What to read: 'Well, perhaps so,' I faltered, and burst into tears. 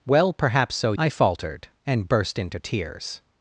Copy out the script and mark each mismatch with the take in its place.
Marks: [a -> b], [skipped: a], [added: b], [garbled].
'Well, perhaps so,' I faltered, and burst into tears.